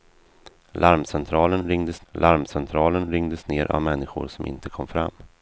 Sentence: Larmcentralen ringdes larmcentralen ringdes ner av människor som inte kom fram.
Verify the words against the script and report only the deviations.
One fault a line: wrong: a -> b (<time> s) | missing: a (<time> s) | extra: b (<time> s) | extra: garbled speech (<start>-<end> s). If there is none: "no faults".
no faults